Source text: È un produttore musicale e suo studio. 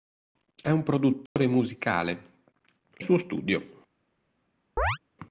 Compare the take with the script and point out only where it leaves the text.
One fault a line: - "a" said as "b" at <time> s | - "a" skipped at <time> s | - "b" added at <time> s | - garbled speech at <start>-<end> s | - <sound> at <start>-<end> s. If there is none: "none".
- dropout at 1.3-1.4 s
- chirp at 4.8-5.0 s